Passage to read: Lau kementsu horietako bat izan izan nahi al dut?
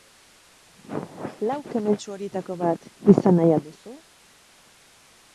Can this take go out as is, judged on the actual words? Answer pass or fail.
fail